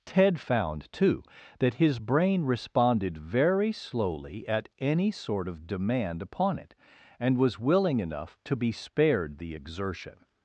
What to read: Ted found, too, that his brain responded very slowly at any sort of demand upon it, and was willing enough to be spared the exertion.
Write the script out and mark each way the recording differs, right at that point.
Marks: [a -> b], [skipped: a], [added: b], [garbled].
Ted found, too, that his brain responded very slowly at any sort of demand upon it, and was willing enough to be spared the exertion.